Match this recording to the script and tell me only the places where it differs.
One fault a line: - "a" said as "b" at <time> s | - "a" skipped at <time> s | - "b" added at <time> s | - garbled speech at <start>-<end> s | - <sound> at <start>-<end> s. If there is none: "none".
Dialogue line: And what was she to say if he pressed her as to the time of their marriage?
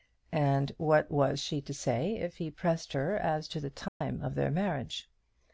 - dropout at 3.9-4.0 s